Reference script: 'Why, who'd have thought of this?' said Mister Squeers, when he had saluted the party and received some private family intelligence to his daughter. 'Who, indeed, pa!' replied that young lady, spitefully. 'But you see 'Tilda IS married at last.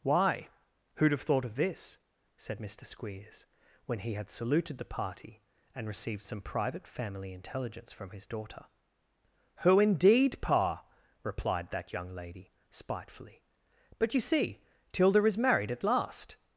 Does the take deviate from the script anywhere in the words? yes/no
yes